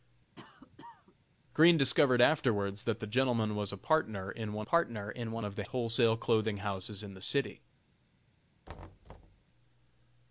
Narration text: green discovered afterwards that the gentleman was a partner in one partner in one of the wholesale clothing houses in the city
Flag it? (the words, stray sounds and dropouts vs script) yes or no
yes